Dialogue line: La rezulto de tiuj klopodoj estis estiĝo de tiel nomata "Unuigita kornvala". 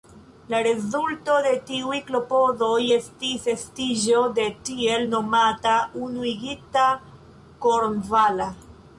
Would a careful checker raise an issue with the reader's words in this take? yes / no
no